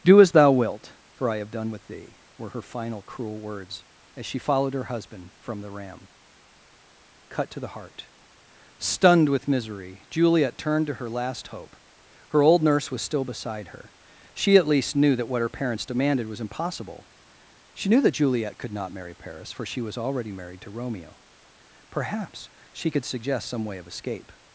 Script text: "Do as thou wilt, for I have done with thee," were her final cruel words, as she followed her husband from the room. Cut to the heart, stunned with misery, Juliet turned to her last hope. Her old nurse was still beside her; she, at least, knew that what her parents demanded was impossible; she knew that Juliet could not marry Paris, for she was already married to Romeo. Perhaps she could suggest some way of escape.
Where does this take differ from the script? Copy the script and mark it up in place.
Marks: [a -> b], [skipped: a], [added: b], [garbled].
"Do as thou wilt, for I have done with thee," were her final cruel words, as she followed her husband from the [room. -> ram] Cut to the heart, stunned with misery, Juliet turned to her last hope. Her old nurse was still beside her; she, at least, knew that what her parents demanded was impossible; she knew that Juliet could not marry Paris, for she was already married to Romeo. Perhaps she could suggest some way of escape.